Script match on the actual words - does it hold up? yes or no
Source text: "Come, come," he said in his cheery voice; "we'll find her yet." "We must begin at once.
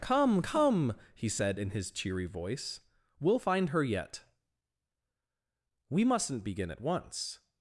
no